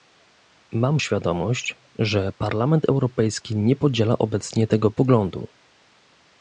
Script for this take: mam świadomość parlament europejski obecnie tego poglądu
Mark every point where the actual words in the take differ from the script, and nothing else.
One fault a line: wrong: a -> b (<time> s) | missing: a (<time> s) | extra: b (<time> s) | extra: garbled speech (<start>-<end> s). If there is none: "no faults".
extra: że (2.0 s)
extra: nie podziela (3.6 s)